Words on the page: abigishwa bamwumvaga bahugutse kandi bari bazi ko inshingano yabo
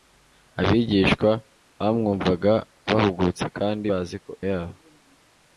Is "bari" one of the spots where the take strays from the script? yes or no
yes